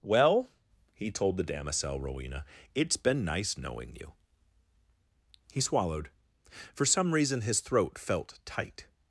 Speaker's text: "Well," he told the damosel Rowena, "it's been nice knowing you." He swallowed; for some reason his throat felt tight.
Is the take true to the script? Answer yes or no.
yes